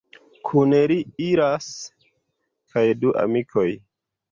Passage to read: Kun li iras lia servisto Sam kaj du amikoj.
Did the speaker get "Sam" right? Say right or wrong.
wrong